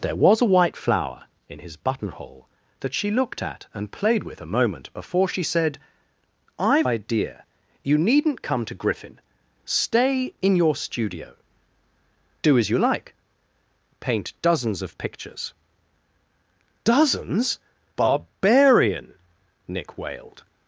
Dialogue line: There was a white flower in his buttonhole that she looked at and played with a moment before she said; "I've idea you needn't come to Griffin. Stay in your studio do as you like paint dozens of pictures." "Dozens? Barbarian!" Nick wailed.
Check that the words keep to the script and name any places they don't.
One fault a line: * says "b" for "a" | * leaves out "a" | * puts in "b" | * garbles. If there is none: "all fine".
all fine